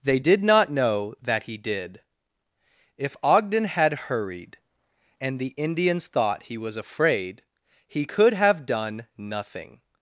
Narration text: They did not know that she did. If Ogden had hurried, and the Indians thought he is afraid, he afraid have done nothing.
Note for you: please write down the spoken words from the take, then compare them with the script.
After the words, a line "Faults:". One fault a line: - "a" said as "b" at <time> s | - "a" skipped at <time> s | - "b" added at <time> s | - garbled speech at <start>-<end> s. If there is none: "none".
They did not know that he did. If Ogden had hurried, and the Indians thought he was afraid, he could have done nothing.
Faults:
- "she" said as "he" at 1.4 s
- "is" said as "was" at 6.6 s
- "afraid" said as "could" at 8.0 s